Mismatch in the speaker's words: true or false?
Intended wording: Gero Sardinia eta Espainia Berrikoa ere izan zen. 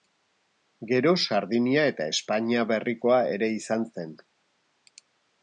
false